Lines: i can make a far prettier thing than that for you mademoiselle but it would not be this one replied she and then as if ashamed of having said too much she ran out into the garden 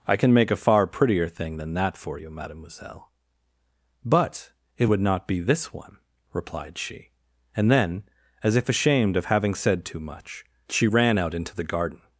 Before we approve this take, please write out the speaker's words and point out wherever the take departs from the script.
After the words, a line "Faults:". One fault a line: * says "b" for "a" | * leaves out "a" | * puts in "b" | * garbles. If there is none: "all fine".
i can make a far prettier thing than that for you mademoiselle but it would not be this one replied she and then as if ashamed of having said too much she ran out into the garden
Faults:
all fine